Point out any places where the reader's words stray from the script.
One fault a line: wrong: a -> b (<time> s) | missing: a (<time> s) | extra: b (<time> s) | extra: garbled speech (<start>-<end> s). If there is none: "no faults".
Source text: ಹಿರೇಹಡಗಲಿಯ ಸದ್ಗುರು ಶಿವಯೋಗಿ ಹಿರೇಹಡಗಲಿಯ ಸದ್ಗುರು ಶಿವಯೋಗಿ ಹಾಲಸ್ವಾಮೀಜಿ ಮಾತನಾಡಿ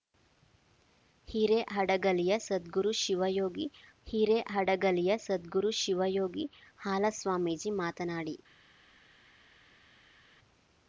no faults